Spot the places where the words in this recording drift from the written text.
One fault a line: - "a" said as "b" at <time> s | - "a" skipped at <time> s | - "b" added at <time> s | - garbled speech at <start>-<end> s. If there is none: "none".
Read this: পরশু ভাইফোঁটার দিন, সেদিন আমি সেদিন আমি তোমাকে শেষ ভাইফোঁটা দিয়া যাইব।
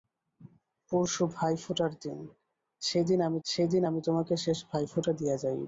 none